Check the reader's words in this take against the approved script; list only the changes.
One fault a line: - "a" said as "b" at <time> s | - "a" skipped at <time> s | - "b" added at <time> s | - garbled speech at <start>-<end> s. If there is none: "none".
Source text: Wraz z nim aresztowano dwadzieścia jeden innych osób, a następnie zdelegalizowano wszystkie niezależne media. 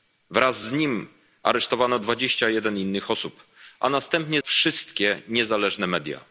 - "zdelegalizowano" skipped at 4.4 s